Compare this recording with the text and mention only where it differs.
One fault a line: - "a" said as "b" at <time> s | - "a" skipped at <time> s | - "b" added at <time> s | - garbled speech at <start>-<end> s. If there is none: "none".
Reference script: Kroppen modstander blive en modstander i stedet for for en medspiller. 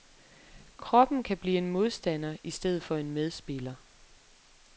- "modstander" said as "kan" at 1.2 s
- "for" skipped at 3.0 s